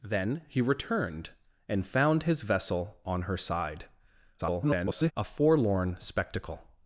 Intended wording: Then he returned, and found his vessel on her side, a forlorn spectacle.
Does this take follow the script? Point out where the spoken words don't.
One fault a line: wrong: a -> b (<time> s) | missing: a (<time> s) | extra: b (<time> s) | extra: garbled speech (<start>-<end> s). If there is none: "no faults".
extra: garbled speech (4.4-5.1 s)